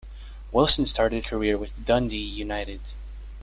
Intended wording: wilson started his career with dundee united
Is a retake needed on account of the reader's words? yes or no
yes